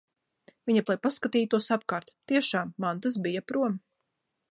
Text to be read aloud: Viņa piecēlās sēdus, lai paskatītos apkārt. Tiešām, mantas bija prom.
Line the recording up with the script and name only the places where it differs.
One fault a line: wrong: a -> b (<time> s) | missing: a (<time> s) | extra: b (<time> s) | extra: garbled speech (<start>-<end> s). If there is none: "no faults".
missing: piecēlās sēdus (0.8 s)